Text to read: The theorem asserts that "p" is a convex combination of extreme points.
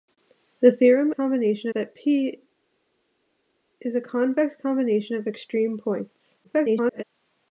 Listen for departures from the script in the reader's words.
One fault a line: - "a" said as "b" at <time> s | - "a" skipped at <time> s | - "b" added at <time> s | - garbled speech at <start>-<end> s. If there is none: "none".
- "asserts" said as "combination" at 1.1 s
- garbled speech at 6.4-7.0 s